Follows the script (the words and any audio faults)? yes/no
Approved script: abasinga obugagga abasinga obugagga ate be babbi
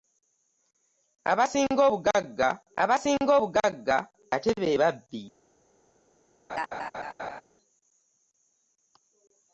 no